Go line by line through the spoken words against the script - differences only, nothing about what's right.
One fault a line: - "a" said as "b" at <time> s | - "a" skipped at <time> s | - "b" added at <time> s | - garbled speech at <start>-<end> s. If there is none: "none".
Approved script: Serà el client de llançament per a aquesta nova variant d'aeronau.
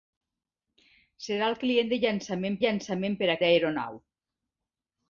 - "llançament" added at 2.6 s
- "aquesta nova variant" skipped at 3.4 s